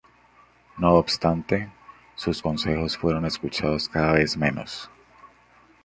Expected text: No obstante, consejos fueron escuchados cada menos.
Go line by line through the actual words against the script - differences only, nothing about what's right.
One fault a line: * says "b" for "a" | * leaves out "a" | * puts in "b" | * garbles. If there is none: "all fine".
* puts in "sus"
* puts in "vez"